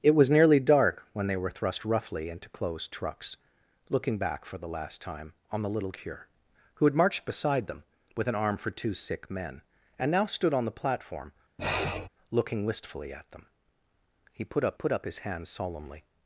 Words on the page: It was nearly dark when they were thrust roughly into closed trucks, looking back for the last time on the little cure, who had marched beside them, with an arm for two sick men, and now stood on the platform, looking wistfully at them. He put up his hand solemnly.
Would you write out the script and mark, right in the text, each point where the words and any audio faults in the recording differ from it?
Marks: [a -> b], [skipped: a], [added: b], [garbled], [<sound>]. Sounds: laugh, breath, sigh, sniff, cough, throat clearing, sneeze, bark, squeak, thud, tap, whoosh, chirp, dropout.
It was nearly dark when they were thrust roughly into closed trucks, looking back for the last time on the little cure, who had marched beside them, with an arm for two sick men, and now stood on the platform, [sniff] looking wistfully at them. He put up [added: put up] his hand solemnly.